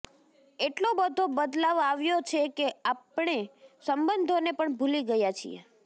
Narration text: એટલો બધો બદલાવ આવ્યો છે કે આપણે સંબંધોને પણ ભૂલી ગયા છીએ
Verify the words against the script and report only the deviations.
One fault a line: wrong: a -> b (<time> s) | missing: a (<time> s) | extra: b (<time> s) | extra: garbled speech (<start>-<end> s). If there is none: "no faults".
no faults